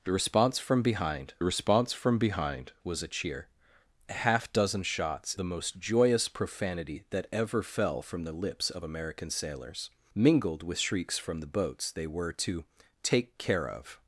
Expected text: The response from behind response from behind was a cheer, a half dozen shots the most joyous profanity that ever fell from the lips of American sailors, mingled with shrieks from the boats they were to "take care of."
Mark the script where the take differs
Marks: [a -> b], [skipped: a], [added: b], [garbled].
The response from behind response from behind was a cheer, a half dozen shots the most joyous profanity that ever fell from the lips of American sailors, mingled with shrieks from the boats they were to "take care of."